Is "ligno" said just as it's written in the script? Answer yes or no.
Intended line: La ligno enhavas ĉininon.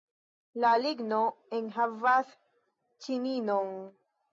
yes